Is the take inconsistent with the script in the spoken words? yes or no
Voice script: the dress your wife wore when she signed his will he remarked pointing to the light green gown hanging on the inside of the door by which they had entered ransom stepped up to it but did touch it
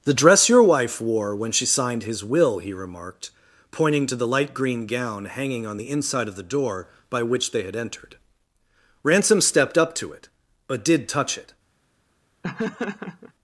no